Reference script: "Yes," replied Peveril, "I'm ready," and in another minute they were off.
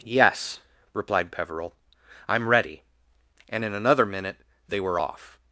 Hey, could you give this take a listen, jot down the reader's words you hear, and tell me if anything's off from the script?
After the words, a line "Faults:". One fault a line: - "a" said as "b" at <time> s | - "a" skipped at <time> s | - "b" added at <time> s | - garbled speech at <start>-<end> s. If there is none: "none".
"Yes," replied Peveril, "I'm ready," and in another minute they were off.
Faults:
none